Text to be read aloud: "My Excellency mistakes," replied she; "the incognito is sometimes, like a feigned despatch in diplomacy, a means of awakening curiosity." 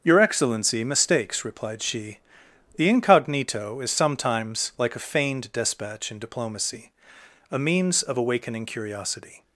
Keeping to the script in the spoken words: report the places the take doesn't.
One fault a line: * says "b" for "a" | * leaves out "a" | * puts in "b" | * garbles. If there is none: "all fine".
* says "Your" for "My"